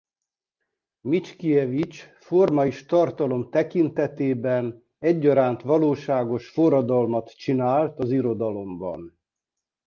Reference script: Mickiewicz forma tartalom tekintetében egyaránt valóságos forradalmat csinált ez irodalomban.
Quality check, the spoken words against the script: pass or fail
fail